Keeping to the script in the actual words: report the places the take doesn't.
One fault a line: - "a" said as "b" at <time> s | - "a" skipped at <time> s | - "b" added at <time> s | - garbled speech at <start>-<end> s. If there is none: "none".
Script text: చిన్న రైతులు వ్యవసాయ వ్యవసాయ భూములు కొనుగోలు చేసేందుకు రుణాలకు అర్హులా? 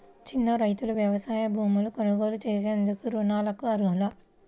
- "వ్యవసాయ" skipped at 1.4 s